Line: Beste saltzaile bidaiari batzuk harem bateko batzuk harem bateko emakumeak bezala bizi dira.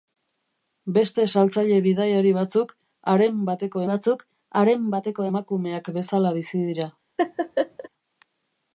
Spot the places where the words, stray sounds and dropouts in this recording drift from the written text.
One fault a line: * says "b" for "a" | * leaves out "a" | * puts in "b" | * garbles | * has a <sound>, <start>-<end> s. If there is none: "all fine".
* has a laugh, 7.2-7.9 s